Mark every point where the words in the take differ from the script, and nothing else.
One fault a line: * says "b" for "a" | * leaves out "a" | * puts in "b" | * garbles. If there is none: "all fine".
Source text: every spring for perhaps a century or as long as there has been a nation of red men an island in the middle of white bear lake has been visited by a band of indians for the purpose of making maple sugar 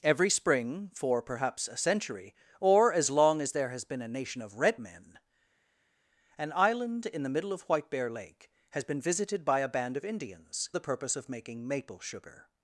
* leaves out "for"